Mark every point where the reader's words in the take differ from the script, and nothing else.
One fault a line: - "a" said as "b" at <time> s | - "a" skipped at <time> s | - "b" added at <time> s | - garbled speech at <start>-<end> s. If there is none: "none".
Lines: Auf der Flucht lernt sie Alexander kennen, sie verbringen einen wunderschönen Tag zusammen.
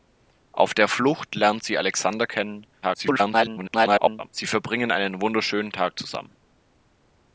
- garbled speech at 2.8-4.3 s